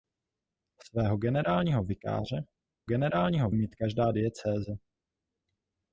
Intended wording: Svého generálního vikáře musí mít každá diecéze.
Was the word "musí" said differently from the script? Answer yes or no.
yes